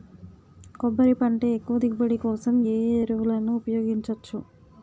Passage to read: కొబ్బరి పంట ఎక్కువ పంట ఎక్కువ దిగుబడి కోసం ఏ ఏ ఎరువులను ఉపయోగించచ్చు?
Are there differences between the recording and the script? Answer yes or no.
yes